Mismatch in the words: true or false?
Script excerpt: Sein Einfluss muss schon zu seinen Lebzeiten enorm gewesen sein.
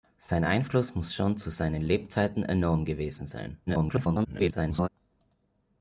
true